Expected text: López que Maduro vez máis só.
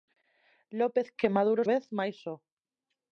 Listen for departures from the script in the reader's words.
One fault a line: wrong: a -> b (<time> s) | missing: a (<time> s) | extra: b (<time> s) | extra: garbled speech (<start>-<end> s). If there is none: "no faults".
no faults